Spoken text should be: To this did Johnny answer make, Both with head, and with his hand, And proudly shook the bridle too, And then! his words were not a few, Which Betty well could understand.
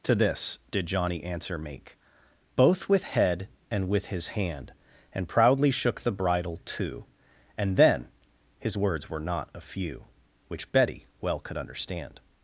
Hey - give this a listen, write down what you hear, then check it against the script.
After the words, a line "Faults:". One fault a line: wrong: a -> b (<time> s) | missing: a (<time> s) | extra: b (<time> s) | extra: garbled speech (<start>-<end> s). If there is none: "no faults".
To this did Johnny answer make, Both with head, and with his hand, And proudly shook the bridle too, And then! his words were not a few, Which Betty well could understand.
Faults:
no faults